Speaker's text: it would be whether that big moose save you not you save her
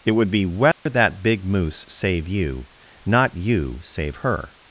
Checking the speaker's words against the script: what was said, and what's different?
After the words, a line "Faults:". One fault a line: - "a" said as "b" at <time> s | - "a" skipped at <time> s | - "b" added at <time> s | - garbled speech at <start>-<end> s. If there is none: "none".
it would be whether that big moose save you not you save her
Faults:
none